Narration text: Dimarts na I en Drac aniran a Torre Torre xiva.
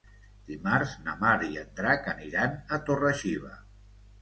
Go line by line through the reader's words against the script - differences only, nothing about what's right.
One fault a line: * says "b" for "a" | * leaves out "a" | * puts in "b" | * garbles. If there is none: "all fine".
* puts in "Mar"
* leaves out "Torre"